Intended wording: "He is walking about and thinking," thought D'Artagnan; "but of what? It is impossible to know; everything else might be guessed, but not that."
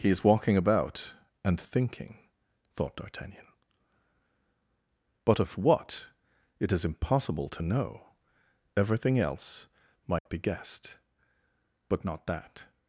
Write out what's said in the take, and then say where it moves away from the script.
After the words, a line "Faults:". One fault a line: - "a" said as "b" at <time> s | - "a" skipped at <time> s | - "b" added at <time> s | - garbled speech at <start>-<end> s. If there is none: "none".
"He is walking about and thinking," thought D'Artagnan; "but of what? It is impossible to know; everything else might be guessed, but not that."
Faults:
none